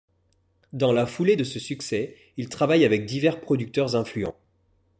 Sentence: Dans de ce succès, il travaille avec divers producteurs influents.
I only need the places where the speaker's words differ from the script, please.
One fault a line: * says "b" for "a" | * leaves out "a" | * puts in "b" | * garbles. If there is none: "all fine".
* puts in "la foulée"